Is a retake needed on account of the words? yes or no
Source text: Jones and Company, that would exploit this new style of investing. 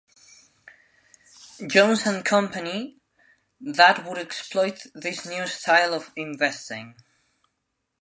no